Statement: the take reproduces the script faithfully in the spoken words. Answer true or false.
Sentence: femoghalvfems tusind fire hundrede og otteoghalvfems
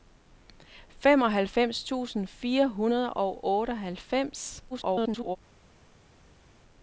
false